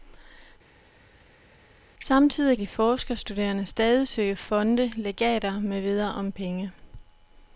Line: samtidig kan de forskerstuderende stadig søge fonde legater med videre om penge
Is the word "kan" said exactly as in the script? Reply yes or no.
no